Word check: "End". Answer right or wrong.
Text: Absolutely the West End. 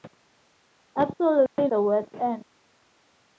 right